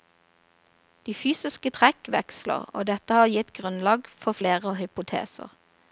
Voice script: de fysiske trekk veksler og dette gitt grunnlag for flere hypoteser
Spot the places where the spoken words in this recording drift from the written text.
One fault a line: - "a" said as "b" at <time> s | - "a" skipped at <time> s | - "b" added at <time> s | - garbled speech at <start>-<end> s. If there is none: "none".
- "har" added at 3.2 s